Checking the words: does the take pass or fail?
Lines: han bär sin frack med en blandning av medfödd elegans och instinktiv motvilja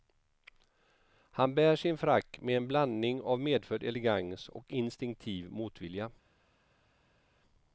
pass